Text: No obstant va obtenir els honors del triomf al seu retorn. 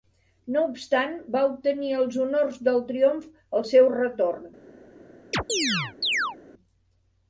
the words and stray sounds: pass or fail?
fail